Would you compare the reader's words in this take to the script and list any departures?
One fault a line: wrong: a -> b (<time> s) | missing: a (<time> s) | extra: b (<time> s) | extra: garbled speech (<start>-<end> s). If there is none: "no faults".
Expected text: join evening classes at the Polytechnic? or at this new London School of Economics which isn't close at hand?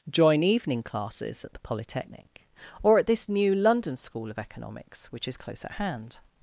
wrong: isn't -> is (5.3 s)